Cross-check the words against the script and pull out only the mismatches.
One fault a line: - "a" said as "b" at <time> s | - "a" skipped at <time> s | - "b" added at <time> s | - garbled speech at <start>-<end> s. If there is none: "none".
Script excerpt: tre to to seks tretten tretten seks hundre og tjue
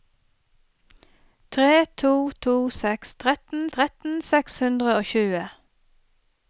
none